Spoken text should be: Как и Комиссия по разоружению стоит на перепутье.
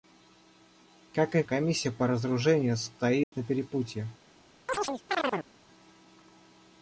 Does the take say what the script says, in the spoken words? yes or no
yes